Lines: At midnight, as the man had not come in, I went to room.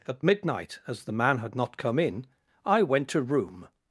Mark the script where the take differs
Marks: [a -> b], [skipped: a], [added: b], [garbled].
At midnight, as the man had not come in, I went to room.